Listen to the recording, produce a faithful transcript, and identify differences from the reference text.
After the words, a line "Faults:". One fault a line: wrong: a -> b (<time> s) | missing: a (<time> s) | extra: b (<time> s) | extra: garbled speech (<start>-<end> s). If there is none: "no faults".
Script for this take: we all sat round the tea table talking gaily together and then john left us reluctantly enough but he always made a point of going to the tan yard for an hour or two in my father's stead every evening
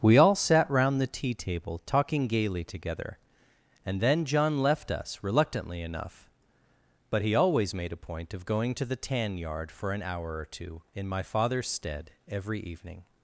we all sat round the tea table talking gaily together and then john left us reluctantly enough but he always made a point of going to the tan yard for an hour or two in my father's stead every evening
Faults:
no faults